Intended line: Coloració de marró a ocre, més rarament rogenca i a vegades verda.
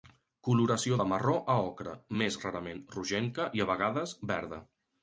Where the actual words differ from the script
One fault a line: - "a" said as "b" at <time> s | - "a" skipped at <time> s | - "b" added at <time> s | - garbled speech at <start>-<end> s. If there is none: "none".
none